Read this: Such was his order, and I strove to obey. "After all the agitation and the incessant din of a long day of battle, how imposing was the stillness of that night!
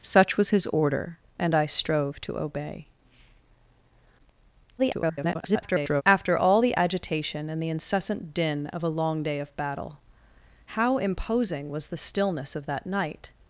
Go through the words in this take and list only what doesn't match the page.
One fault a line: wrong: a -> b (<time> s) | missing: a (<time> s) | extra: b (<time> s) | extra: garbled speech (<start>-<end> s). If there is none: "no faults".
extra: garbled speech (4.8-6.0 s)